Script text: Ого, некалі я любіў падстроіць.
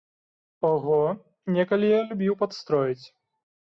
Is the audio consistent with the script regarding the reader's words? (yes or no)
yes